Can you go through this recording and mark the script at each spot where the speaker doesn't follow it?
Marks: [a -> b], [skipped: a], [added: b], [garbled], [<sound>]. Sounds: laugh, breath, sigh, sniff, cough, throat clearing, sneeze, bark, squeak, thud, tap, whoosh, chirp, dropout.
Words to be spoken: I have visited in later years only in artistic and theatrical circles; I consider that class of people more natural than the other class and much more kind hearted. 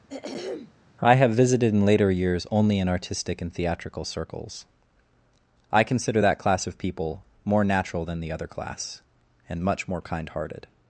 [throat clearing] I have visited in later years only in artistic and theatrical circles; I consider that class of people more natural than the other class and much more kind hearted.